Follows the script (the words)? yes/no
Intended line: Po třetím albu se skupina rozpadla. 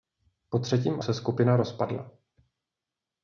no